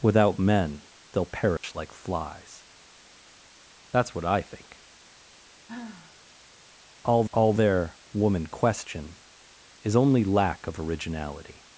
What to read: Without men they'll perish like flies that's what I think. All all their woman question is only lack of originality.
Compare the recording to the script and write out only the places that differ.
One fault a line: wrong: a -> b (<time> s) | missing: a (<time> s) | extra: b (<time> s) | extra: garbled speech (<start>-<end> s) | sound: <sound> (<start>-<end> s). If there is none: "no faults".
sound: dropout (1.6-1.6 s)
sound: sigh (5.7-6.2 s)